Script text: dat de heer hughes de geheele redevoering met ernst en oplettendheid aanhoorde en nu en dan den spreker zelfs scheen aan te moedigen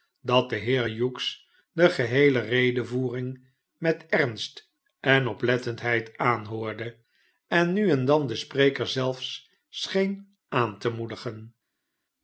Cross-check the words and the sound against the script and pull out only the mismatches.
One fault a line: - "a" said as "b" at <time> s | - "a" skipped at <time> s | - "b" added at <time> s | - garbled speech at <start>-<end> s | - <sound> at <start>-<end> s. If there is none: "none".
none